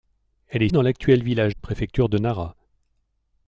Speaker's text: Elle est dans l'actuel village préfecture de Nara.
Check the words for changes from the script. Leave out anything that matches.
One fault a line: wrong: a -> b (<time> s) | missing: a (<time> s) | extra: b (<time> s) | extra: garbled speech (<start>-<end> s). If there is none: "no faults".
no faults